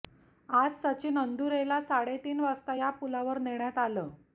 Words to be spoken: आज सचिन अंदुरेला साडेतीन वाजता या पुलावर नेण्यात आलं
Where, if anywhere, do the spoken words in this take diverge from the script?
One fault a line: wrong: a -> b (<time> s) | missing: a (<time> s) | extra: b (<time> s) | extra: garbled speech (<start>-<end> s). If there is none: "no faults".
no faults